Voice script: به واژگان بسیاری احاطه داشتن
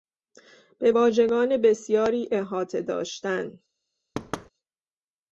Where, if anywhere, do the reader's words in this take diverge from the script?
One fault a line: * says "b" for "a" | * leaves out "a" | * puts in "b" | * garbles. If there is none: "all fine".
all fine